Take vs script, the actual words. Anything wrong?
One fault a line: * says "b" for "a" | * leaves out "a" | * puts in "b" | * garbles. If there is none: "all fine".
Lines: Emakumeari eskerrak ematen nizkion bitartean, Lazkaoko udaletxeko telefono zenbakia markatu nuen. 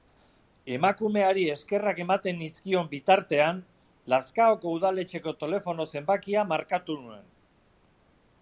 all fine